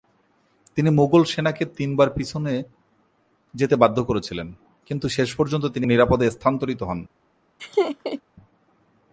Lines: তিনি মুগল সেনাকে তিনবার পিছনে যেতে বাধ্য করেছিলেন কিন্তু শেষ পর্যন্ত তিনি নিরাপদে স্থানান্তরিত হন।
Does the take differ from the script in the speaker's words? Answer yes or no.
no